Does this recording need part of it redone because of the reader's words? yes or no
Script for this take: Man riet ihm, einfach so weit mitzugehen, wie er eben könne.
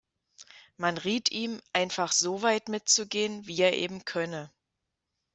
no